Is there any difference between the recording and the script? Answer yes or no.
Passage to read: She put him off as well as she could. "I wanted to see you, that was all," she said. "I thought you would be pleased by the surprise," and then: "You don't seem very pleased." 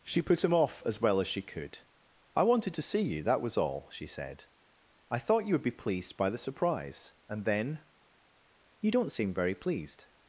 no